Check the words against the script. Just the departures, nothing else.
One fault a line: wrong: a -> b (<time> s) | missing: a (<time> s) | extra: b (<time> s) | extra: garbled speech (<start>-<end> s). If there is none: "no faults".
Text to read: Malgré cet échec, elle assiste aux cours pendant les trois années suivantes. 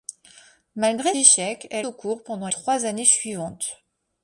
missing: cet (1.1 s)
missing: assiste (1.9 s)
missing: les (2.5 s)